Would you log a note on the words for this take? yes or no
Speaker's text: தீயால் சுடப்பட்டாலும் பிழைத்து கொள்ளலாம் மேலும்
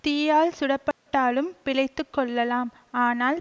yes